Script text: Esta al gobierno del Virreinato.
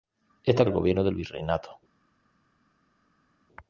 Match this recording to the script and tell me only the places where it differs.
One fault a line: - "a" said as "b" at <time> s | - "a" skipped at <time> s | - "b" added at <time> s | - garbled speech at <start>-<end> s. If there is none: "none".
none